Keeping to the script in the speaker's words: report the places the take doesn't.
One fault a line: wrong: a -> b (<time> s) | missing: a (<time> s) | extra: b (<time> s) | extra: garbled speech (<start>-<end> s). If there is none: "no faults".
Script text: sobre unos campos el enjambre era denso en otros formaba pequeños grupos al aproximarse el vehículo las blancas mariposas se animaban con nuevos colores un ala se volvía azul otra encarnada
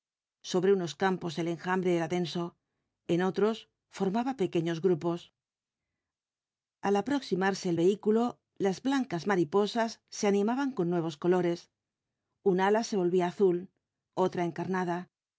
no faults